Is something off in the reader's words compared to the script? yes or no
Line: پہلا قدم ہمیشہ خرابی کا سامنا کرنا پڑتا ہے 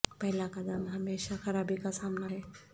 yes